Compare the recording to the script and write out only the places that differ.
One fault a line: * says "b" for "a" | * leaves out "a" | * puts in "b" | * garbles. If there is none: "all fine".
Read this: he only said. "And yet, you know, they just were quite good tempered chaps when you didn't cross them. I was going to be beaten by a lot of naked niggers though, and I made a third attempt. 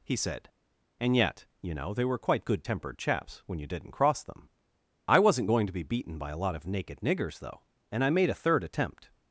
* leaves out "only"
* leaves out "just"
* says "wasn't" for "was"